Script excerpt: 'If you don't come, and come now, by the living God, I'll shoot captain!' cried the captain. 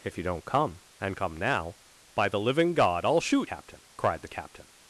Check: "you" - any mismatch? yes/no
no